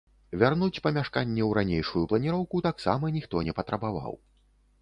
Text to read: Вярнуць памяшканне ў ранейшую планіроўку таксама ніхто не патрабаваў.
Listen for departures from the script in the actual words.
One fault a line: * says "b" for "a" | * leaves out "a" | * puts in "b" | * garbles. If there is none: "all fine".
all fine